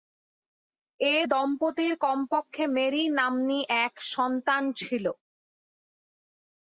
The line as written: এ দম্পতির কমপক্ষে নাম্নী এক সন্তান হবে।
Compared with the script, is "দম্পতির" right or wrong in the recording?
right